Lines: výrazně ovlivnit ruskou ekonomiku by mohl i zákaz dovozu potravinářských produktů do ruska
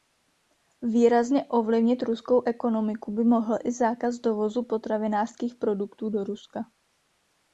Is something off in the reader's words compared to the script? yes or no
no